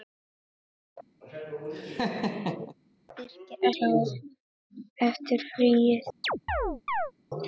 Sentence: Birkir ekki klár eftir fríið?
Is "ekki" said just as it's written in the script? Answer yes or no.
no